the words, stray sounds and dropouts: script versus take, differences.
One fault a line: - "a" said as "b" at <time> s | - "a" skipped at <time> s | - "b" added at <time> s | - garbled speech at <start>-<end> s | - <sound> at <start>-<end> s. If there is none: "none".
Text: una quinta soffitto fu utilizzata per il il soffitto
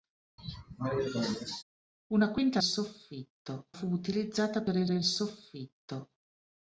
- cough at 0.4-1.6 s